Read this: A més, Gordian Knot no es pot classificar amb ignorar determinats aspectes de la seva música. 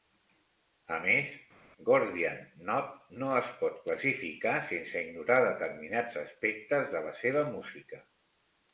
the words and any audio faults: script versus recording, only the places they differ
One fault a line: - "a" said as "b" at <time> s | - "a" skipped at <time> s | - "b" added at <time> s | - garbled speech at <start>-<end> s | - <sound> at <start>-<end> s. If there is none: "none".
- "amb" said as "sense" at 4.7 s